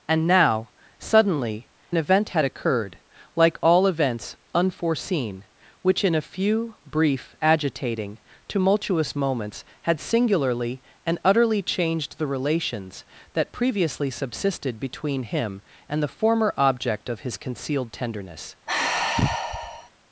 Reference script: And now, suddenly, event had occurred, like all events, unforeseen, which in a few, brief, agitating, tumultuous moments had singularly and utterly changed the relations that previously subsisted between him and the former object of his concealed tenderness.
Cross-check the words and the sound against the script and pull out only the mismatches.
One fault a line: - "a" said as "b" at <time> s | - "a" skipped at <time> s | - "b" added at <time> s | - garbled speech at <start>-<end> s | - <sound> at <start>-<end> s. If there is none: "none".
- sigh at 18.7-19.9 s